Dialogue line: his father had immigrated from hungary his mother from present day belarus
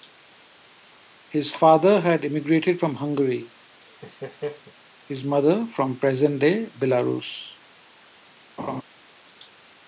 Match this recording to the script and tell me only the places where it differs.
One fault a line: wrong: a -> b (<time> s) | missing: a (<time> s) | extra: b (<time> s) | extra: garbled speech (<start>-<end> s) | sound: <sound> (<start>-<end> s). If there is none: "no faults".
sound: laugh (3.8-4.7 s)
sound: laugh (8.6-8.8 s)